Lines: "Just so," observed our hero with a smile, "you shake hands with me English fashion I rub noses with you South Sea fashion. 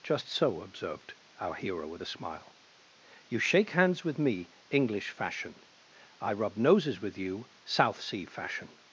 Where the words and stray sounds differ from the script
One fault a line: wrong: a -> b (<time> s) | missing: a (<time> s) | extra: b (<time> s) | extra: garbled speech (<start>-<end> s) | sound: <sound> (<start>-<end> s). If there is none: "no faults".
no faults